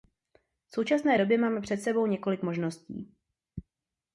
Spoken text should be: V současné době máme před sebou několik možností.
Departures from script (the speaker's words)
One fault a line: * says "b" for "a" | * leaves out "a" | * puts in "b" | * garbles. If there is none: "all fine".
all fine